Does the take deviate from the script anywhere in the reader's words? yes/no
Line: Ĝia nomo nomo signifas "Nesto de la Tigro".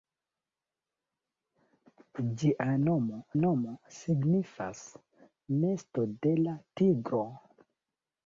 no